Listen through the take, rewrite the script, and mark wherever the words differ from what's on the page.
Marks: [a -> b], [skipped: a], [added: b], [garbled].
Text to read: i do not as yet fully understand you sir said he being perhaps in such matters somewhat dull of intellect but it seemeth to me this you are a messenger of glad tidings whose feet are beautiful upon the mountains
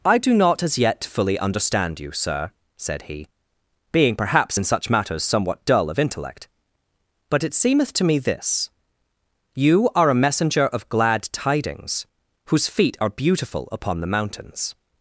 i do not as yet fully understand you sir said he being perhaps in such matters somewhat dull of intellect but it seemeth to me this you are a messenger of glad tidings whose feet are beautiful upon the mountains